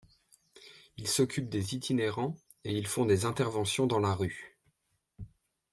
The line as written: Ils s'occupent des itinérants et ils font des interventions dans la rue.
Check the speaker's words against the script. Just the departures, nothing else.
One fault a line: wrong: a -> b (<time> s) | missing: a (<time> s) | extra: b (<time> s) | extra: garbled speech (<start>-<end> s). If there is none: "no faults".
no faults